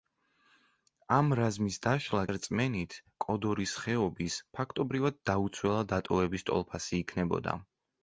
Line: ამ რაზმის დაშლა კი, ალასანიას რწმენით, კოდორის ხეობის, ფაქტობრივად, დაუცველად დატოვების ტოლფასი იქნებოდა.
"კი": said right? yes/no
no